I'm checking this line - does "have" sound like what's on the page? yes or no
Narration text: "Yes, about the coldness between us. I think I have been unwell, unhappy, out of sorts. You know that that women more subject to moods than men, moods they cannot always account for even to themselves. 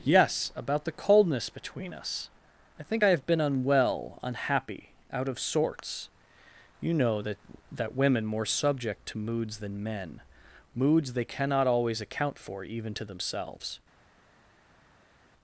yes